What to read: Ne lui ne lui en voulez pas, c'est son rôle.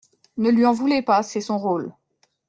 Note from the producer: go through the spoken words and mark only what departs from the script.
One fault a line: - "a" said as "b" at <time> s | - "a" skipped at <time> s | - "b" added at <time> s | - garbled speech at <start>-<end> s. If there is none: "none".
- "ne lui" skipped at 0.7 s